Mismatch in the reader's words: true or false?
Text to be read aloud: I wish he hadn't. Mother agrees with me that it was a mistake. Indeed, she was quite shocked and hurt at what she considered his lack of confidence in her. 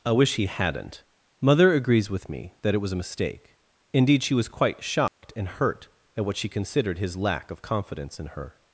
false